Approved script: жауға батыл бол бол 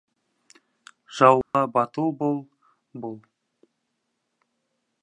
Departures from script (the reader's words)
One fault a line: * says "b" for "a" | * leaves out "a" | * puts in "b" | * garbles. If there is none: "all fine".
all fine